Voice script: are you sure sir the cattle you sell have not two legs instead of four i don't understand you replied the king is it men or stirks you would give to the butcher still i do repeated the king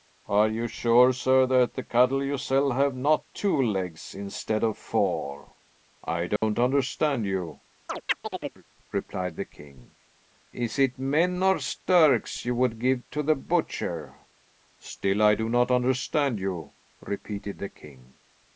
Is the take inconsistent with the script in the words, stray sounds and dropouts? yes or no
yes